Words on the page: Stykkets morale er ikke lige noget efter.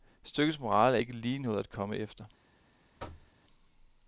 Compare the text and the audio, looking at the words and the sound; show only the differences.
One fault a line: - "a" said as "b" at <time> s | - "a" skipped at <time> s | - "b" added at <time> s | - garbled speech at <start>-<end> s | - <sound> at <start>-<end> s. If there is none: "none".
- "at komme" added at 1.6 s
- thud at 3.0-3.3 s